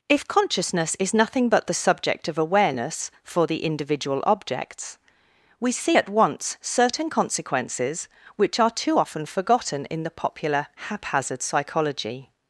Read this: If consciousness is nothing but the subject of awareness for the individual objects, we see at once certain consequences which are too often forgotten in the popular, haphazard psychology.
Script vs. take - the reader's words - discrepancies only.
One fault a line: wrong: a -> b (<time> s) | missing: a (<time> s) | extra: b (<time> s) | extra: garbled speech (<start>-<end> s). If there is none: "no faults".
no faults